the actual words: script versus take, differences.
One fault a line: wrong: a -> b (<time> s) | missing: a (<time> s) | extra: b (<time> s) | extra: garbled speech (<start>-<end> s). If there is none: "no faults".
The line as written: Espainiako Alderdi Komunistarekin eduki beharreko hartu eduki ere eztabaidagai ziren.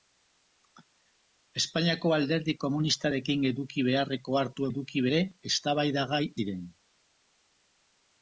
no faults